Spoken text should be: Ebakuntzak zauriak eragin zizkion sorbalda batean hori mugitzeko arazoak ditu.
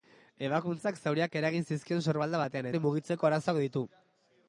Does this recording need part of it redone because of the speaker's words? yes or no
no